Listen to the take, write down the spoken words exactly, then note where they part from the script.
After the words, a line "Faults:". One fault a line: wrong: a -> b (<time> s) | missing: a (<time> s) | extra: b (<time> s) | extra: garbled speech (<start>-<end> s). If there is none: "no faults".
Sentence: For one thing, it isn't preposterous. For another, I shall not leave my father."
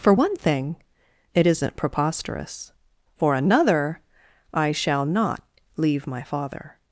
For one thing, it isn't preposterous. For another, I shall not leave my father."
Faults:
no faults